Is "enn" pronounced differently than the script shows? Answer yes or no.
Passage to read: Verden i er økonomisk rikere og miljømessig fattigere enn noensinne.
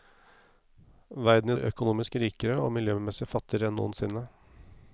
no